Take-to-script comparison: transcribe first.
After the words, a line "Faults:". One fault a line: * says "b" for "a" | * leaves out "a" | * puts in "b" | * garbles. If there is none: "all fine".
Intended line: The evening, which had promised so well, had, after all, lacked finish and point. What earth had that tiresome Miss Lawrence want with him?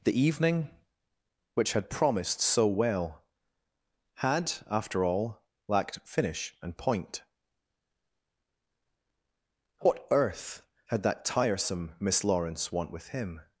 The evening, which had promised so well, had, after all, lacked finish and point. What earth had that tiresome Miss Lawrence want with him?
Faults:
all fine